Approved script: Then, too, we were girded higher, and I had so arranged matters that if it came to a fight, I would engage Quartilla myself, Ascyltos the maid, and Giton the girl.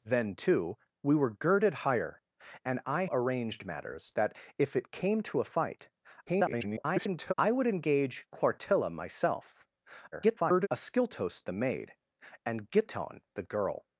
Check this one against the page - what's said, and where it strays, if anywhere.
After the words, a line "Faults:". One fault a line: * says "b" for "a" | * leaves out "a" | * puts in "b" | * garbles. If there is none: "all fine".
Then, too, we were girded higher, and I arranged matters that if it came to a fight, [garbled] I would engage Quartilla myself, [garbled] Ascyltos the maid, and Giton the girl.
Faults:
* leaves out "had so"
* garbles
* garbles